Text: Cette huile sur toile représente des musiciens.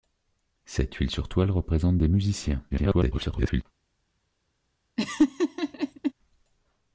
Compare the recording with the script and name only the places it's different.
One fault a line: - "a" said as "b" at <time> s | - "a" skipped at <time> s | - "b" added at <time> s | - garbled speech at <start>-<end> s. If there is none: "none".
- garbled speech at 2.7-3.6 s